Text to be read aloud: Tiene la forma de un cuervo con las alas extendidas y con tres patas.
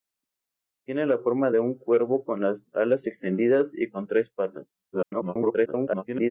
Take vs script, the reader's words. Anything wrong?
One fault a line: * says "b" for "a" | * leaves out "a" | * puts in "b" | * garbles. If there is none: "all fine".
* garbles